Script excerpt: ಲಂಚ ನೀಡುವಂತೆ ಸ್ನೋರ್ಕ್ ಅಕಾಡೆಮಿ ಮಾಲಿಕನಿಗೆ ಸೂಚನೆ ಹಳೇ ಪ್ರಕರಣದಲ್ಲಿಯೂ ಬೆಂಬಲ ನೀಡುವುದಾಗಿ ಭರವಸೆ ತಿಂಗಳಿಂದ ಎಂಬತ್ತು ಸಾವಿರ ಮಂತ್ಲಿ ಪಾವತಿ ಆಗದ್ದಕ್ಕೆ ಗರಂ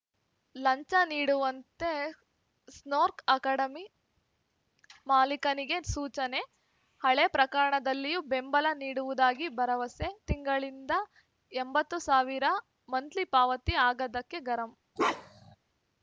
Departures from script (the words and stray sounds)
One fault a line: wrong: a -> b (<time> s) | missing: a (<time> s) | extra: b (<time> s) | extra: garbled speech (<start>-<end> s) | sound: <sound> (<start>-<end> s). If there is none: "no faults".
sound: bark (15.0-15.6 s)